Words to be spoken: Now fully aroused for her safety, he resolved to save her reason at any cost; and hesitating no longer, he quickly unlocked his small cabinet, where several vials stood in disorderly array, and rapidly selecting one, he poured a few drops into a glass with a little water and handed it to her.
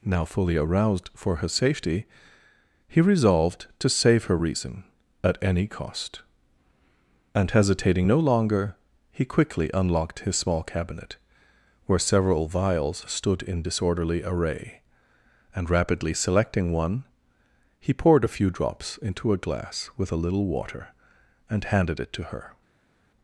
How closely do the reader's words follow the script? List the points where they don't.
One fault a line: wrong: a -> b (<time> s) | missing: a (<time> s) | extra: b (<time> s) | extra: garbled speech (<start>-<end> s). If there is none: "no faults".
no faults